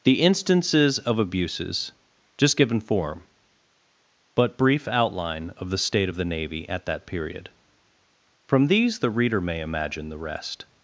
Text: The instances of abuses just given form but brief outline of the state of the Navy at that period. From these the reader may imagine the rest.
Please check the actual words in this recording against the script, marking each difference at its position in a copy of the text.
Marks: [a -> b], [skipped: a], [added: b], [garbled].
The instances of abuses just given form but brief outline of the state of the Navy at that period. From these the reader may imagine the rest.